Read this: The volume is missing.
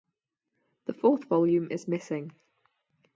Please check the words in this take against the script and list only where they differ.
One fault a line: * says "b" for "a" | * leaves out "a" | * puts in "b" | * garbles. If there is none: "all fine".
* puts in "fourth"